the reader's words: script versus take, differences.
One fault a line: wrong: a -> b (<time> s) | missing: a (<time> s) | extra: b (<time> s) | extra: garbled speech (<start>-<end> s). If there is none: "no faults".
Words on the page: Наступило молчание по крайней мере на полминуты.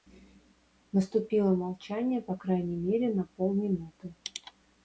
no faults